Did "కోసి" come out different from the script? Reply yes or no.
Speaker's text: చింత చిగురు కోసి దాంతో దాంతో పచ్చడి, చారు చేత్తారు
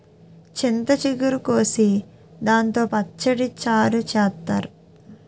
no